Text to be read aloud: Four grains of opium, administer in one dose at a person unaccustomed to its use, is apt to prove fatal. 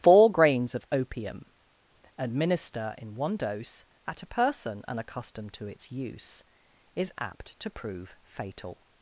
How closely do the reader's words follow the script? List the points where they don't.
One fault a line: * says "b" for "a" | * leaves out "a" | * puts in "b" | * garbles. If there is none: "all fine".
all fine